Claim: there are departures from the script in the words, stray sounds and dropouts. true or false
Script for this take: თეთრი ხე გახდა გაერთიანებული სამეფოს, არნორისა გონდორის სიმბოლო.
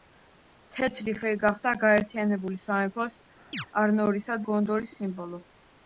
true